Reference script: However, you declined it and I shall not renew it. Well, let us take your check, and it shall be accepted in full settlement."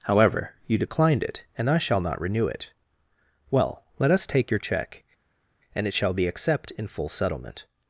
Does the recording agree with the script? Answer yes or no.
no